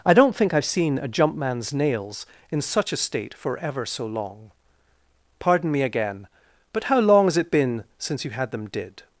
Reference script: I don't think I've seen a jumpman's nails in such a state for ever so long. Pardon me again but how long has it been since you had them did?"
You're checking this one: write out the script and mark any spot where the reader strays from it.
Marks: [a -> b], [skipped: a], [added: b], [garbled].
I don't think I've seen a jumpman's nails in such a state for ever so long. Pardon me again but how long has it been since you had them did?"